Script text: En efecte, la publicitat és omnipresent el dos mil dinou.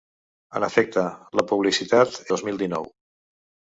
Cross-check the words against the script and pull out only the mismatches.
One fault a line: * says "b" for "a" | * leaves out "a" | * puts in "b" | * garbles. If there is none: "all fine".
* leaves out "és omnipresent el"